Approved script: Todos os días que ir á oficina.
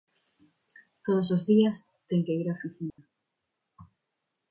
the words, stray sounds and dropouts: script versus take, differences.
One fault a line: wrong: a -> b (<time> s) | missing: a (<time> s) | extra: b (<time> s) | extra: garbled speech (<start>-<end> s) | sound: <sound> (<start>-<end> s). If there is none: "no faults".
extra: ten (2.1 s)
sound: dropout (2.9-3.0 s)